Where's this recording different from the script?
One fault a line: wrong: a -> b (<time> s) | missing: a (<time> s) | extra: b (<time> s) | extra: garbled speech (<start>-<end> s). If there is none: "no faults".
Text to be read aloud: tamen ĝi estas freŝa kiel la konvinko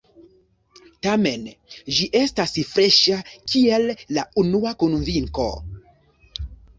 extra: unua (4.4 s)